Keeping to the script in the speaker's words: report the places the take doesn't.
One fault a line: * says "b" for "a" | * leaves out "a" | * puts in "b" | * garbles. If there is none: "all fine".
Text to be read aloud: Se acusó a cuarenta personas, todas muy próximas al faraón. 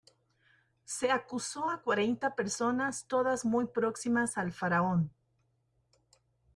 all fine